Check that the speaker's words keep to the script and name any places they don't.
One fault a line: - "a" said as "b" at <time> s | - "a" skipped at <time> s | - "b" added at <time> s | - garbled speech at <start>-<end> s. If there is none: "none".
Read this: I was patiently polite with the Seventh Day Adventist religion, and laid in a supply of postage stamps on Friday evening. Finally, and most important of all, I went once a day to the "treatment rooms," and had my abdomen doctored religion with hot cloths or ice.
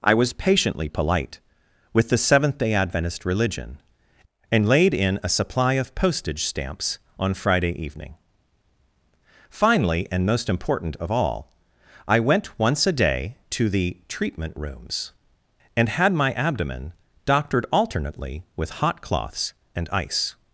- "religion" said as "alternately" at 17.7 s
- "or" said as "and" at 19.8 s